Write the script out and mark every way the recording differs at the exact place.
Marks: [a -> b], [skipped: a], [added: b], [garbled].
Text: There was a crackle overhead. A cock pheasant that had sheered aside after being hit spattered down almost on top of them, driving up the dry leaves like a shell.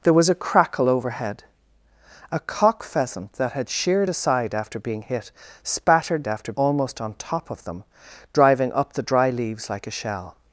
There was a crackle overhead. A cock pheasant that had sheered aside after being hit spattered [down -> after] almost on top of them, driving up the dry leaves like a shell.